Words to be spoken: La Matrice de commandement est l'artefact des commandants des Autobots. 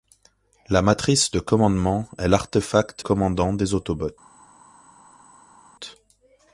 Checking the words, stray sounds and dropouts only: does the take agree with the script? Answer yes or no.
no